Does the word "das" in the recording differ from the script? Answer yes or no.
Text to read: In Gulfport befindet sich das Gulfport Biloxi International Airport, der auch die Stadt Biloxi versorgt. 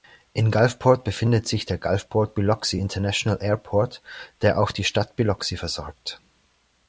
yes